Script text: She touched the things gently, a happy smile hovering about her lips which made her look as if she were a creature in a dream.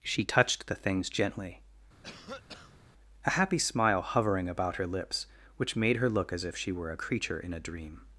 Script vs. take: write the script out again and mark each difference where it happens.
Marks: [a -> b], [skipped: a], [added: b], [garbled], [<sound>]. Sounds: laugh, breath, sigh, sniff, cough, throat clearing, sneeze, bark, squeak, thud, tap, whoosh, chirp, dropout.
She touched the things gently, [cough] a happy smile hovering about her lips which made her look as if she were a creature in a dream.